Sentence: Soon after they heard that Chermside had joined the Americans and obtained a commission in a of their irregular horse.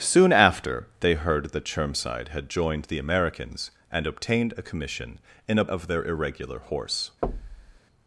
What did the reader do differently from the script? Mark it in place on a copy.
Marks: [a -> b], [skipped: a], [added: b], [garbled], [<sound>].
Soon after they heard that Chermside had joined the Americans and obtained a commission in a of their irregular horse. [thud]